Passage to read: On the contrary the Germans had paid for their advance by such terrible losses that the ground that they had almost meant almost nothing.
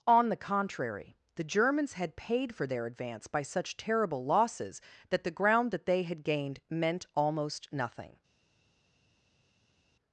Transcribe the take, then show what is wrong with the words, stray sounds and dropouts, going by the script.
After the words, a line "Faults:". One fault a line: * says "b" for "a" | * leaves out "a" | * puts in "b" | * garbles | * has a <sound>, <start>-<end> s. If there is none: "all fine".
On the contrary the Germans had paid for their advance by such terrible losses that the ground that they had gained meant almost nothing.
Faults:
* says "gained" for "almost"